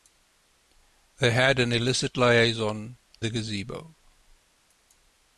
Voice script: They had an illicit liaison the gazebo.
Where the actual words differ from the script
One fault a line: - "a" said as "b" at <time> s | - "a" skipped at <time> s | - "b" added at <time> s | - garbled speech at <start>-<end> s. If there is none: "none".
none